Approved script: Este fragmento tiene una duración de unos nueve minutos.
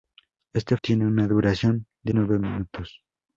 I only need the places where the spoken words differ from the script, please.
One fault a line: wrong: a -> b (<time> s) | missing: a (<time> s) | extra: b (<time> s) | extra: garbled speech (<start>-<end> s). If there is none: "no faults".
missing: fragmento (0.8 s)
missing: unos (2.1 s)